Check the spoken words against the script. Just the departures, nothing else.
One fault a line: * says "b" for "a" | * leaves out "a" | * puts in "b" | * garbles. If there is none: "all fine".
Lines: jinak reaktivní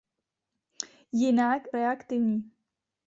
all fine